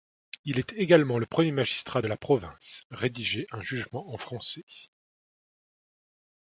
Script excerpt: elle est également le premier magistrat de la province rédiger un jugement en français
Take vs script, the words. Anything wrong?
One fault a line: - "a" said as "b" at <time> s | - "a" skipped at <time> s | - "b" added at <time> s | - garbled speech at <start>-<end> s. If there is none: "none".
- "elle" said as "il" at 0.5 s